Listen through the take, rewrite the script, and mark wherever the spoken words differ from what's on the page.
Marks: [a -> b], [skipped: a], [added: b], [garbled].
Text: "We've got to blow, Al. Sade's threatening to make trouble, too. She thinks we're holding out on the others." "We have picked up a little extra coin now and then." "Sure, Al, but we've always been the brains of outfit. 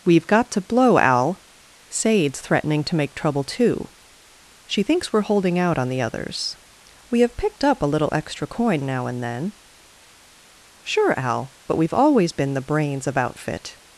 "We've got to blow, Al. Sade's threatening to make trouble, too. She thinks we're holding out on the others." "We have picked up a little extra coin now and then." "Sure, Al, but we've always been the brains of outfit.